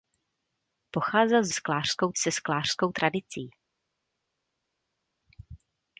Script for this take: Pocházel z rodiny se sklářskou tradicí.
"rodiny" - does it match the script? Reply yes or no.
no